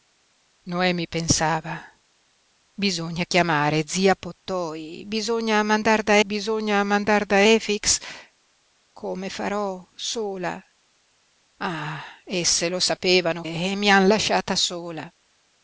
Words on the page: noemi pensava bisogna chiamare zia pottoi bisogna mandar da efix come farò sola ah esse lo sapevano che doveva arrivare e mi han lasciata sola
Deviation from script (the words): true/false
true